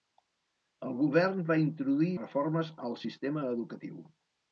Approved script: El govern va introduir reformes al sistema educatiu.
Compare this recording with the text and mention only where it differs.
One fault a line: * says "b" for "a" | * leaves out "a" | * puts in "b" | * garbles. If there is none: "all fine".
all fine